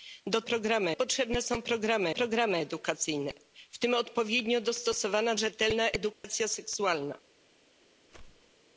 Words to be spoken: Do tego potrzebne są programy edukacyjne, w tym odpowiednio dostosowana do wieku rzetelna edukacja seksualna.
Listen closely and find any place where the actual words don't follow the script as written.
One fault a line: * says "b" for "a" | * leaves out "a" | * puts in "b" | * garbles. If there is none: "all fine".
* says "programy" for "tego"
* puts in "programy"
* leaves out "do wieku"